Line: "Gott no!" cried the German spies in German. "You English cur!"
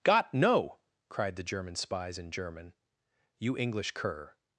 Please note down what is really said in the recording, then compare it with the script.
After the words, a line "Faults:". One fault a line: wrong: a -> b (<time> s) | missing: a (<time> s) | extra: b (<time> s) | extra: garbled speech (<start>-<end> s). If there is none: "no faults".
"Gott no!" cried the German spies in German. "You English cur!"
Faults:
no faults